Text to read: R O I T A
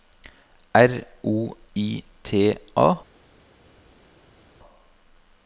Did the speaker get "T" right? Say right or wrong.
right